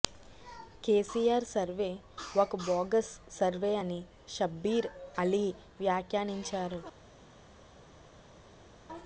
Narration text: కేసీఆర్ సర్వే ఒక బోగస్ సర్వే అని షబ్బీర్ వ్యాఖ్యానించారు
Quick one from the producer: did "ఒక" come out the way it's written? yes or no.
yes